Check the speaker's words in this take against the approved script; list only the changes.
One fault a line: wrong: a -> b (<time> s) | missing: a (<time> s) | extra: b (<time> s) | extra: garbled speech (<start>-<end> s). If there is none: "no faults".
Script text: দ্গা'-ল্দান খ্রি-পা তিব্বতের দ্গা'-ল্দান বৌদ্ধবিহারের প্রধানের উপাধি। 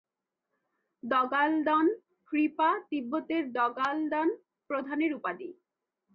missing: বৌদ্ধবিহারের (4.3 s)